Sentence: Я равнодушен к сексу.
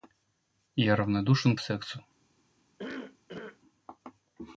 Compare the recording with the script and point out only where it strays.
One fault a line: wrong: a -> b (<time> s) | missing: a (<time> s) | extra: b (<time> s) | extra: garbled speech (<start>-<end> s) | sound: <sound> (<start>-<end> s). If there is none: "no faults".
sound: cough (2.8-3.6 s)